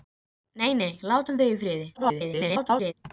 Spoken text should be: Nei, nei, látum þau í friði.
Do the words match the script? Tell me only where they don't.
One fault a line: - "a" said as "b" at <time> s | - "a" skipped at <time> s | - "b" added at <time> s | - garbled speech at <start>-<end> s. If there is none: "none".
- garbled speech at 1.9-2.9 s